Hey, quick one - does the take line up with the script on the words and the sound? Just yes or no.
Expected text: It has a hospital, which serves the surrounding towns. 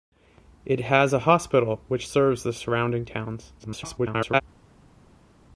no